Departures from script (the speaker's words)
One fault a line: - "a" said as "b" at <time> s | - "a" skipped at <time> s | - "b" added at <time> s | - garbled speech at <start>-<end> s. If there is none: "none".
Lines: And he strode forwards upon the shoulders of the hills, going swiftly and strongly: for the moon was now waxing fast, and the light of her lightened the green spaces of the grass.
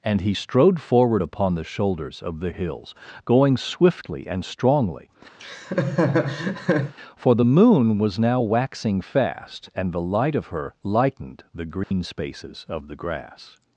- "forwards" said as "forward" at 0.8 s